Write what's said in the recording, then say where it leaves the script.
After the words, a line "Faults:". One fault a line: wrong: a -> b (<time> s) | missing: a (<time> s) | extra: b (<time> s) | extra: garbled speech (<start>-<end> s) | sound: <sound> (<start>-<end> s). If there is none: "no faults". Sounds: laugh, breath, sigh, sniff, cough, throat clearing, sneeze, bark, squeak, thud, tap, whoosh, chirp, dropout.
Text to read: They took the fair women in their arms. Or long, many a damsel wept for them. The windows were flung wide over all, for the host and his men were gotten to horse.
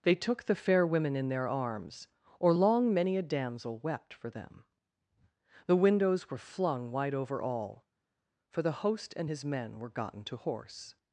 They took the fair women in their arms. Or long, many a damsel wept for them. The windows were flung wide over all, for the host and his men were gotten to horse.
Faults:
no faults